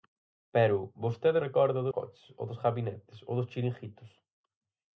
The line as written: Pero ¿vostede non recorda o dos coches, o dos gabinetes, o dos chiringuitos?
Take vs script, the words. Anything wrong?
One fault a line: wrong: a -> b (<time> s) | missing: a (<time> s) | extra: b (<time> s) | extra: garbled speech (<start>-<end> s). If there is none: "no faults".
missing: non (1.4 s)
missing: dos (1.9 s)